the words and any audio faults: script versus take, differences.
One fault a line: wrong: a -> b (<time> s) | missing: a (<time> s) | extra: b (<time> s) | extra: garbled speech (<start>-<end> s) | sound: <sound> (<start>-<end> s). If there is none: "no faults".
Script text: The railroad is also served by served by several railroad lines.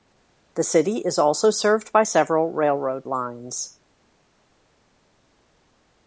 wrong: railroad -> city (0.6 s)
missing: served by (2.1 s)